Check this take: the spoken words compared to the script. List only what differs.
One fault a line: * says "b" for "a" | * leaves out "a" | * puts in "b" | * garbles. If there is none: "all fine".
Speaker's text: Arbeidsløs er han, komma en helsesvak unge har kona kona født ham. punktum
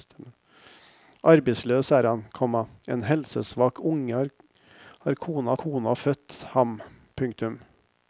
all fine